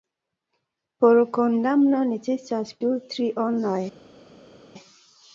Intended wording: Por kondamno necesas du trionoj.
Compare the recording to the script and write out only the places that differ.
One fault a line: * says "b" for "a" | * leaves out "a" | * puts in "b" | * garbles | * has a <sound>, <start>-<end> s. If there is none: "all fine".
all fine